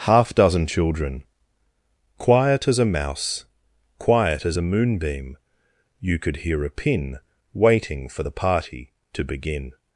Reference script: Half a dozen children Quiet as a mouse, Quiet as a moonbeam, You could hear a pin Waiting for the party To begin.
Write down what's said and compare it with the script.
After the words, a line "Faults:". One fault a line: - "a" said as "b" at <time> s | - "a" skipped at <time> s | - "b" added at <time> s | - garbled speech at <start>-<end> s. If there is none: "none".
Half dozen children Quiet as a mouse, Quiet as a moonbeam, You could hear a pin Waiting for the party To begin.
Faults:
- "a" skipped at 0.3 s